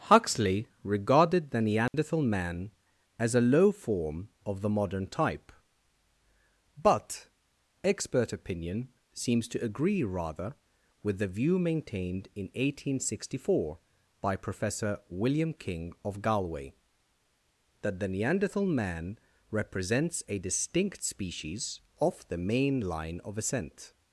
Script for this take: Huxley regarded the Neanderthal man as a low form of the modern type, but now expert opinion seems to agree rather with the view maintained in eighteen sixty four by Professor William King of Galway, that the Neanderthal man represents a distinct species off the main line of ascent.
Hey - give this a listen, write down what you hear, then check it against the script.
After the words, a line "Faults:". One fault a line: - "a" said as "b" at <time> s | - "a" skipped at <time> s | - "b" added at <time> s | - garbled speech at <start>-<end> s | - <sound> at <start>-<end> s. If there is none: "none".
Huxley regarded the Neanderthal man as a low form of the modern type, but expert opinion seems to agree rather with the view maintained in eighteen sixty four by Professor William King of Galway, that the Neanderthal man represents a distinct species off the main line of ascent.
Faults:
- dropout at 1.9-1.9 s
- "now" skipped at 7.3 s